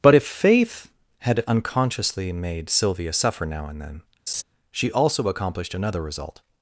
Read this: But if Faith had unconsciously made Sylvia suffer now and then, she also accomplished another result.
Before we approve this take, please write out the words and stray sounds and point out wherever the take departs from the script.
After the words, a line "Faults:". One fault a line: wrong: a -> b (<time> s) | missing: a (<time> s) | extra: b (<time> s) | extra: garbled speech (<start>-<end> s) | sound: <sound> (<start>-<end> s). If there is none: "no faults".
But if Faith had unconsciously made Sylvia suffer now and then, she also accomplished another result.
Faults:
sound: laugh (4.3-4.4 s)